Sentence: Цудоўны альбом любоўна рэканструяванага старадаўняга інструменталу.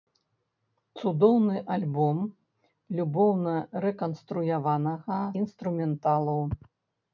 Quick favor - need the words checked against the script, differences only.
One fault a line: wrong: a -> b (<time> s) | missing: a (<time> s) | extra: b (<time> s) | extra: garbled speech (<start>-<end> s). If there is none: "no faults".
missing: старадаўняга (5.2 s)